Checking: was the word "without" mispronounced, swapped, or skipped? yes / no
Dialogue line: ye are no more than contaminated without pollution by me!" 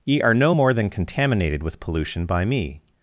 yes